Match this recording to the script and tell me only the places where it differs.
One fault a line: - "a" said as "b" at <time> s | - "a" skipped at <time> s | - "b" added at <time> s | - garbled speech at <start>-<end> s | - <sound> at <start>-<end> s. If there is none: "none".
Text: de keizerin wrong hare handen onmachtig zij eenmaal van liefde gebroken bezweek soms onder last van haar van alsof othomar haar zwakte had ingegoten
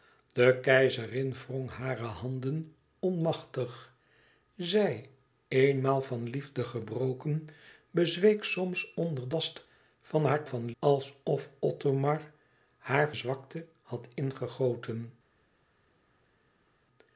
none